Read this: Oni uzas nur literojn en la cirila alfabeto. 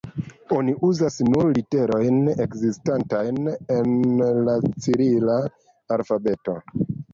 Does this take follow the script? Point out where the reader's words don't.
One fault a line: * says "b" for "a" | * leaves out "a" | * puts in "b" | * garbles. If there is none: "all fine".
* puts in "ekzistantajn"